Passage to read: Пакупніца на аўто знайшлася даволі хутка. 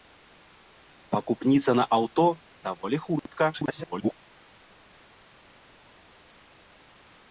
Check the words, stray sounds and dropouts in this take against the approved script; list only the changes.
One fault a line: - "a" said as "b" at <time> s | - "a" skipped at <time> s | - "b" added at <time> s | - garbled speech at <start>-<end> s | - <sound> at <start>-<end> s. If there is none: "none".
- "знайшлася" skipped at 2.2 s
- garbled speech at 3.5-4.1 s